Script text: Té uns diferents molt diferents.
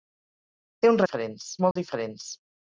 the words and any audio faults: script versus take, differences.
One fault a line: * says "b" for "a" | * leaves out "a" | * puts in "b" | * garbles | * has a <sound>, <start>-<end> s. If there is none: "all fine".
* has a dropout, 1.7-1.8 s